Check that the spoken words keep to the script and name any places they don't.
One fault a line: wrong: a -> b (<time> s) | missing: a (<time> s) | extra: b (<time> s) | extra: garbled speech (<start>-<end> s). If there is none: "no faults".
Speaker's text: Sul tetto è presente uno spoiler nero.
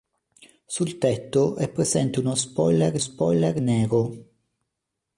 extra: spoiler (3.0 s)